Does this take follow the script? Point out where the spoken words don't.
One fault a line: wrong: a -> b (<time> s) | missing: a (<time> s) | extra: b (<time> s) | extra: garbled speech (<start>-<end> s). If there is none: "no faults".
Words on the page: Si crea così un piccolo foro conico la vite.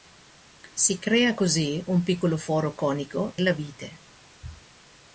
no faults